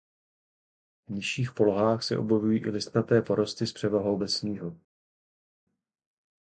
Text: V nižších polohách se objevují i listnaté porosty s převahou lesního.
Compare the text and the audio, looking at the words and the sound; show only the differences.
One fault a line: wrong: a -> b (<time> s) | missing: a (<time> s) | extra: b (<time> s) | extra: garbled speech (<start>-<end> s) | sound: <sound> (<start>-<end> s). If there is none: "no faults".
no faults